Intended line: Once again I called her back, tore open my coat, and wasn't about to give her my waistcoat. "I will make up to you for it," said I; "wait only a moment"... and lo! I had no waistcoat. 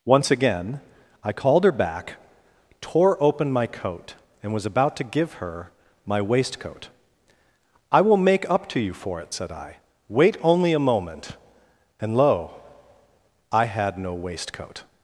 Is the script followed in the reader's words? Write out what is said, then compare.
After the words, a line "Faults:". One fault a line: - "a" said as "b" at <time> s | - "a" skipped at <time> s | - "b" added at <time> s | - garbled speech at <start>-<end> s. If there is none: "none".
Once again I called her back, tore open my coat, and was about to give her my waistcoat. "I will make up to you for it," said I; "wait only a moment"... and lo! I had no waistcoat.
Faults:
- "wasn't" said as "was" at 4.5 s